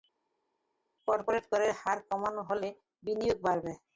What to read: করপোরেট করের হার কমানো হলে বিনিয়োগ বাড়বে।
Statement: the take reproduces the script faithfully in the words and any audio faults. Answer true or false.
true